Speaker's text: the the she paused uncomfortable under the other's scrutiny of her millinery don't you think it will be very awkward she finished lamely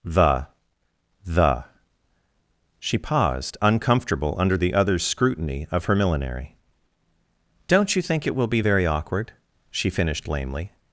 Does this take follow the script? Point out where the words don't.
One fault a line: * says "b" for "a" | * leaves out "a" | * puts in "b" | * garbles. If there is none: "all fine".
all fine